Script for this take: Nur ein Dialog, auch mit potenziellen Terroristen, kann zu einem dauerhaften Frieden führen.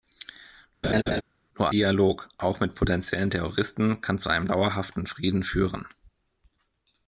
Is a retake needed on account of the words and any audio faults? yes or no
yes